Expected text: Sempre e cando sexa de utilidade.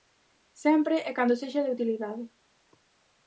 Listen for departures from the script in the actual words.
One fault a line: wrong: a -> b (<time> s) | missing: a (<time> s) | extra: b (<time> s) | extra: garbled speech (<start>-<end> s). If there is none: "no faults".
no faults